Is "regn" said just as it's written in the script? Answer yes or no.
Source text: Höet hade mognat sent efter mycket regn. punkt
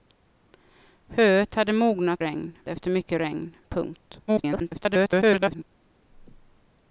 yes